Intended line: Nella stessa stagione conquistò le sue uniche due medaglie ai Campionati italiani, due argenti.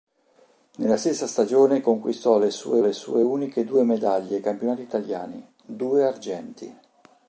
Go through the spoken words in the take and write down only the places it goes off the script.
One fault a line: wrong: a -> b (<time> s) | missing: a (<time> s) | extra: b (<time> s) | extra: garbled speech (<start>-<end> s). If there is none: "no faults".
extra: le sue (2.8 s)